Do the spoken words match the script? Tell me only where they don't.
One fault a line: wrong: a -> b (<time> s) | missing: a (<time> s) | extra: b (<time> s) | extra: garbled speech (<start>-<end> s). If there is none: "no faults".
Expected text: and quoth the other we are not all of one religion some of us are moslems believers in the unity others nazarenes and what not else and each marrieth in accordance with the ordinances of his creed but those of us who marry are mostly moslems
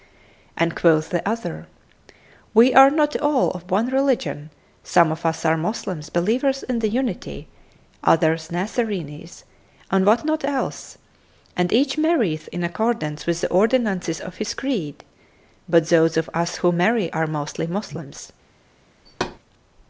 no faults